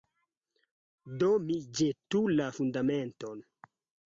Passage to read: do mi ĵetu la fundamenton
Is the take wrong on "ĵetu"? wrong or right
right